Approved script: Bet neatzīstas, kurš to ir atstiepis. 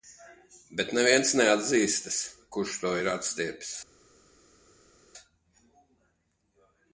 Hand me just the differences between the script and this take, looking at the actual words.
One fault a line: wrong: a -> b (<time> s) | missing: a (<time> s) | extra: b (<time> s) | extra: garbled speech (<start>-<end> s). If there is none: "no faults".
extra: neviens (1.0 s)